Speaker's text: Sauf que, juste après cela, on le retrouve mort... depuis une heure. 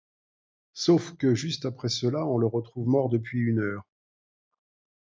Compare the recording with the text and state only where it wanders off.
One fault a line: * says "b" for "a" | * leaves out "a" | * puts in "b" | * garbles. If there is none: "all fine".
all fine